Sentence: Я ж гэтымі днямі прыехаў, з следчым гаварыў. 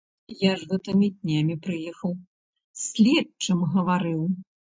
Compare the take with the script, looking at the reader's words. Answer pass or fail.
pass